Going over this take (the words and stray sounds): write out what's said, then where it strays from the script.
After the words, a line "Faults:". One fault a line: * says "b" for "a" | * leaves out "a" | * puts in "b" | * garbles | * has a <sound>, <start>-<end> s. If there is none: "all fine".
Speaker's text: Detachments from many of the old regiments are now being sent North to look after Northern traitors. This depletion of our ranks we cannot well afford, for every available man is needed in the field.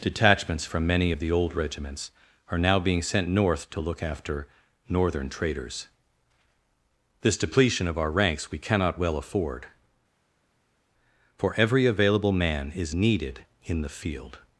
Detachments from many of the old regiments are now being sent North to look after Northern traitors. This depletion of our ranks we cannot well afford, for every available man is needed in the field.
Faults:
all fine